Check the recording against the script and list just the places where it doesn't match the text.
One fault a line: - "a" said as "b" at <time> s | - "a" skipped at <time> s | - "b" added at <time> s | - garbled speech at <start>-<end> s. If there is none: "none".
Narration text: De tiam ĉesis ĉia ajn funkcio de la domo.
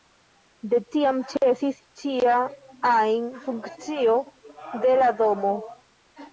none